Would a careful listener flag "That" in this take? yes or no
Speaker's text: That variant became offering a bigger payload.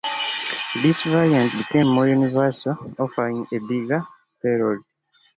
yes